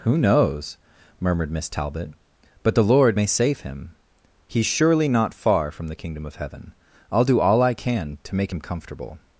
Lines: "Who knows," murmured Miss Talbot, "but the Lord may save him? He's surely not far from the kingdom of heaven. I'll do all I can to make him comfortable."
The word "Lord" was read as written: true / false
true